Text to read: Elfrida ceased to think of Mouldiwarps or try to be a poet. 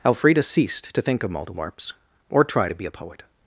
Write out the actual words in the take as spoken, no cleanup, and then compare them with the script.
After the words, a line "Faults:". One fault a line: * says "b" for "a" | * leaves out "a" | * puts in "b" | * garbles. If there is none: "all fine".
Elfrida ceased to think of Mouldiwarps or try to be a poet.
Faults:
all fine